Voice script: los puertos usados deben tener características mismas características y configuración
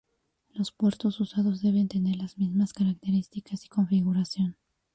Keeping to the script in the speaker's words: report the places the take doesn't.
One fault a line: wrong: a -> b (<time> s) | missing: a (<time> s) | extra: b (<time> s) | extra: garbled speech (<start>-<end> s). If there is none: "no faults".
wrong: características -> las (2.2 s)